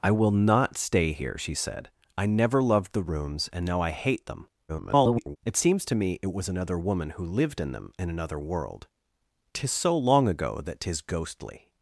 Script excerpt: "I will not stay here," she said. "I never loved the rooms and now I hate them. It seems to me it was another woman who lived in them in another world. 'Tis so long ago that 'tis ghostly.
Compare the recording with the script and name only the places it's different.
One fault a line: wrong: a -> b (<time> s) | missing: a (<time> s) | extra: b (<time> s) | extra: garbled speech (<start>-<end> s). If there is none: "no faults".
extra: garbled speech (4.7-5.4 s)